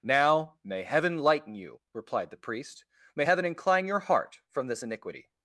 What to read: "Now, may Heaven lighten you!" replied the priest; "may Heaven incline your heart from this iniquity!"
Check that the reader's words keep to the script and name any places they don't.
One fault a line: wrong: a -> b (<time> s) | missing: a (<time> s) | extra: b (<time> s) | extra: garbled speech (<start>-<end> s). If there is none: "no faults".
no faults